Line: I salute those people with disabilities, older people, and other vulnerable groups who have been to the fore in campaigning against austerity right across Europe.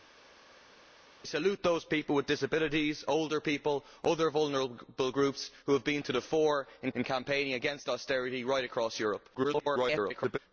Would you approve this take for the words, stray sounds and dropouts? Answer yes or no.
no